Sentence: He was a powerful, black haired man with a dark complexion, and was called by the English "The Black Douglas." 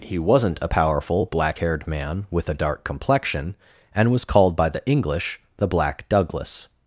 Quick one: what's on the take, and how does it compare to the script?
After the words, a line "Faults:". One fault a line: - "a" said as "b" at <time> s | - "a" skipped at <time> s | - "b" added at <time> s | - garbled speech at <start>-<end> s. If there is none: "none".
He wasn't a powerful, black haired man with a dark complexion, and was called by the English "The Black Douglas."
Faults:
- "was" said as "wasn't" at 0.2 s